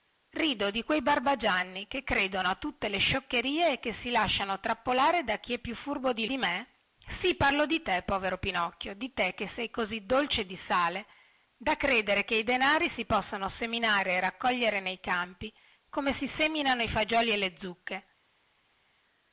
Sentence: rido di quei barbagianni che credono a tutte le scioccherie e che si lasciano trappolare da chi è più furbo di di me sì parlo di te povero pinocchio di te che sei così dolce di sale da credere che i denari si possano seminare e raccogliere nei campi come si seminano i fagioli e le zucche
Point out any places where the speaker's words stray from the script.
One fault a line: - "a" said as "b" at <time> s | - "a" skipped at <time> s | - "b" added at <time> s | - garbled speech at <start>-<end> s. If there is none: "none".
none